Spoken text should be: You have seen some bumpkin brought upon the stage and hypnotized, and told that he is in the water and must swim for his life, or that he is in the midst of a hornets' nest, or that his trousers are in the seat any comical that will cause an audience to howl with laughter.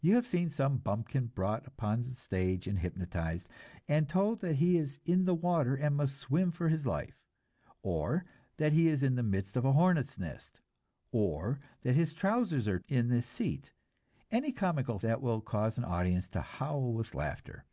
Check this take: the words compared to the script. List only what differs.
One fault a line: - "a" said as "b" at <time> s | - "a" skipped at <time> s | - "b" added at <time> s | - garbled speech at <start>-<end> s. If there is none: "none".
none